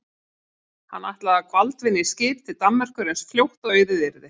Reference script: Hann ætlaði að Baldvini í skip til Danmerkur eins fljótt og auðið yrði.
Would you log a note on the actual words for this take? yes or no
no